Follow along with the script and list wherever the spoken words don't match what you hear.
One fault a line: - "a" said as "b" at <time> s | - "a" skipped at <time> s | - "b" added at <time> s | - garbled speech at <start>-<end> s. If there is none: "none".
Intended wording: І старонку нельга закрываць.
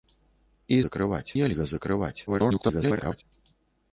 - "старонку" said as "закрываць" at 0.8 s
- garbled speech at 2.3-3.2 s